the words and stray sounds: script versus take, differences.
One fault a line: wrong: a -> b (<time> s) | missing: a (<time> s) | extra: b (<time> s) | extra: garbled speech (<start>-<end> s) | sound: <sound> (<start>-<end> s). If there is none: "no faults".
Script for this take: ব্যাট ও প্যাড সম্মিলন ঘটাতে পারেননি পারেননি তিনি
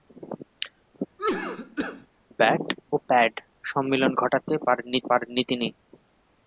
sound: cough (1.2-2.1 s)